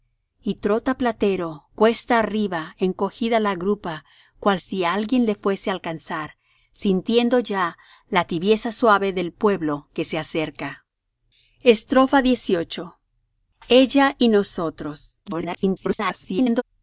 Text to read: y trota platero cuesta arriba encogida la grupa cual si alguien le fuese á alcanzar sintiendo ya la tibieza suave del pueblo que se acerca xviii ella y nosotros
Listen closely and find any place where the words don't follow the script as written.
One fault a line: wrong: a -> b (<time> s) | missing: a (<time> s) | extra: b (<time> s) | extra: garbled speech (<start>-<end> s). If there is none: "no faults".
extra: garbled speech (15.3-16.6 s)